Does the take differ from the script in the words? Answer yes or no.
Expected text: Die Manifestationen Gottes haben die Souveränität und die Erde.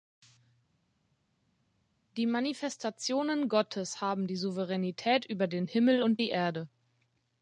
yes